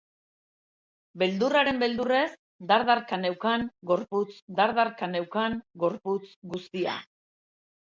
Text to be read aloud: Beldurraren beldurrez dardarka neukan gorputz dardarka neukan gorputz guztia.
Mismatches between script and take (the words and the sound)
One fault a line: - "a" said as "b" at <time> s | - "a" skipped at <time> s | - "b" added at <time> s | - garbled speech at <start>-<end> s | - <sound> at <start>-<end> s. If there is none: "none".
none